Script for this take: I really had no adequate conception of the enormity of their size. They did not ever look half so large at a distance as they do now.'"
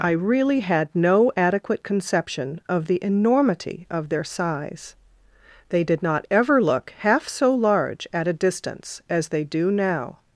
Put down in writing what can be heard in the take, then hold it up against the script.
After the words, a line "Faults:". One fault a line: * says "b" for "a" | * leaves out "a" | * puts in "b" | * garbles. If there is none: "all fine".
I really had no adequate conception of the enormity of their size. They did not ever look half so large at a distance as they do now.'"
Faults:
all fine